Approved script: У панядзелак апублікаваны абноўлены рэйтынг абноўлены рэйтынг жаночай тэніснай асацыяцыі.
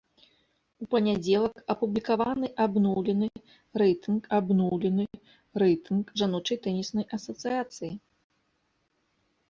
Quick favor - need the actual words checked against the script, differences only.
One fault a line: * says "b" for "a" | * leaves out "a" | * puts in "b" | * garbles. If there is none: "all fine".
all fine